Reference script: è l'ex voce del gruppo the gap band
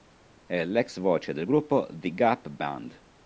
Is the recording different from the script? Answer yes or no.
no